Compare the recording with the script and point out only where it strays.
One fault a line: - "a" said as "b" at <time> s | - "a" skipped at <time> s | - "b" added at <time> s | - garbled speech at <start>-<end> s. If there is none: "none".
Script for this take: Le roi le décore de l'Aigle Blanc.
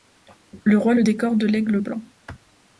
none